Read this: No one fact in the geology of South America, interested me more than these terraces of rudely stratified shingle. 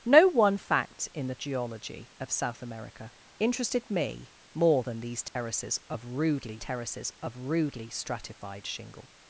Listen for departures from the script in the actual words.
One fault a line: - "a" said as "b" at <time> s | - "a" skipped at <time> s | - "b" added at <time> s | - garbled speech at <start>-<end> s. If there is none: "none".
- "terraces of rudely" added at 6.6 s